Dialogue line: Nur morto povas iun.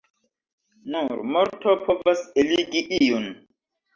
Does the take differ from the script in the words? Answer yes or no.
yes